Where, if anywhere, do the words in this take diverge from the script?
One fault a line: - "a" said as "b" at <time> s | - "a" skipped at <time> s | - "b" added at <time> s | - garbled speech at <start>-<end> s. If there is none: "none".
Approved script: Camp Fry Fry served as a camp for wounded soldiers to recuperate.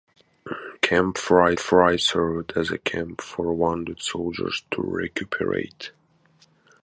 none